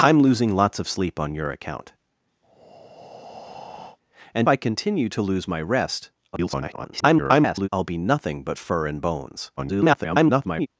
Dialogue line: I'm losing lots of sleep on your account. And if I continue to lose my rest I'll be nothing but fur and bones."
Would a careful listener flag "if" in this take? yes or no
yes